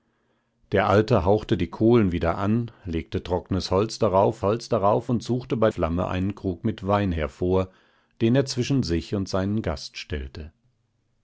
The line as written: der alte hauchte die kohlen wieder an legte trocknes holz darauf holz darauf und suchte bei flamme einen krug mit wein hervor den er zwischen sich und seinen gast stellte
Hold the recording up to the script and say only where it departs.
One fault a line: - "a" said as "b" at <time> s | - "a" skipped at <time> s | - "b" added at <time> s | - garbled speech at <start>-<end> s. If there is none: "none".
none